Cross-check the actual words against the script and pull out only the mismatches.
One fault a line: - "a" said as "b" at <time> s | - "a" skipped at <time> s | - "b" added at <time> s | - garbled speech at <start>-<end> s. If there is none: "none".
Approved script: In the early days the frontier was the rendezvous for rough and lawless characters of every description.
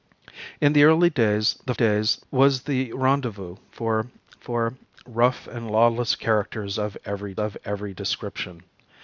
- "frontier" said as "days" at 1.7 s
- "for" added at 4.4 s
- "of every" added at 7.4 s